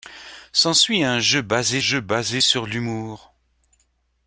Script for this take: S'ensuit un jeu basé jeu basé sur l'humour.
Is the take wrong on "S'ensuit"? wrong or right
right